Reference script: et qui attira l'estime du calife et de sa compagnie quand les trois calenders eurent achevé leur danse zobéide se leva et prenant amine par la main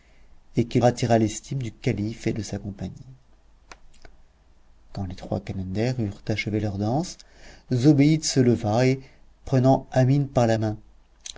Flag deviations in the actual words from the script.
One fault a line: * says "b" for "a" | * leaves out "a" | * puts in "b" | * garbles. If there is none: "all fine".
all fine